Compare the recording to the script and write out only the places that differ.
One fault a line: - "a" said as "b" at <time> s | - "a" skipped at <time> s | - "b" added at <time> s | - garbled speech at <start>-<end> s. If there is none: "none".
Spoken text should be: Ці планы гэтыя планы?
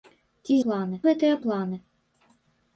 none